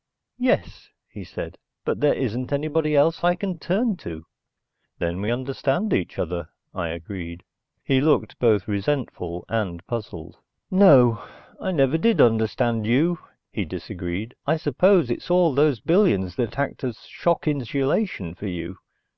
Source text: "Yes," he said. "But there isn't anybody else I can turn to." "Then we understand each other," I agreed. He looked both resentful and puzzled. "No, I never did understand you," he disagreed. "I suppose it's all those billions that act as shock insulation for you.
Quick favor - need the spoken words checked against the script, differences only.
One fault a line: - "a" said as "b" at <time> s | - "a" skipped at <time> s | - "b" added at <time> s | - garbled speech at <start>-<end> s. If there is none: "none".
none